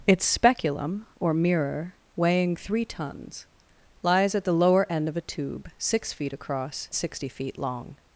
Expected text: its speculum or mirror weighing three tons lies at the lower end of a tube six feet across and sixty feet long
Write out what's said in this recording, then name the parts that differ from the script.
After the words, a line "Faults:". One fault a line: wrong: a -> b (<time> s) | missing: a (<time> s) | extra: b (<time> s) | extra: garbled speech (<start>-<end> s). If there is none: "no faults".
its speculum or mirror weighing three tons lies at the lower end of a tube six feet across sixty feet long
Faults:
missing: and (6.9 s)